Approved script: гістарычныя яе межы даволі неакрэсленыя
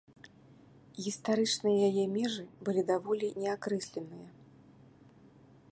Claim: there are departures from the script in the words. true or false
true